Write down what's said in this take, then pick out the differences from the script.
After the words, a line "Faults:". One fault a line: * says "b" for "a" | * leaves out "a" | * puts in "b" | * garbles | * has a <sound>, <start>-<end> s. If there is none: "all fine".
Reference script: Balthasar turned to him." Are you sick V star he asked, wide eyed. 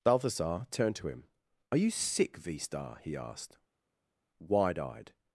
Balthasar turned to him." Are you sick V star he asked, wide eyed.
Faults:
all fine